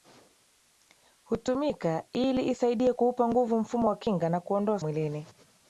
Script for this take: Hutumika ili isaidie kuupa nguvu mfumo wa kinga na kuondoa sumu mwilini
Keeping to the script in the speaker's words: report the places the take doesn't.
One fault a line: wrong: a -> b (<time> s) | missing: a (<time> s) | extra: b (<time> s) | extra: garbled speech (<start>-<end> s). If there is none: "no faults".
missing: sumu (4.8 s)